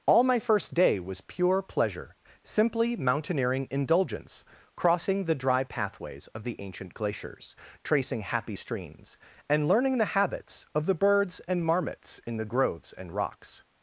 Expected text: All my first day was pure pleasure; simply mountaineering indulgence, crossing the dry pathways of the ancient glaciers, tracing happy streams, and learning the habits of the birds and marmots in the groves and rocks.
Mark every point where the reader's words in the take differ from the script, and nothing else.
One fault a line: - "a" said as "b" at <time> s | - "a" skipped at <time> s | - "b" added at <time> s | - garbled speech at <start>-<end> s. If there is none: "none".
none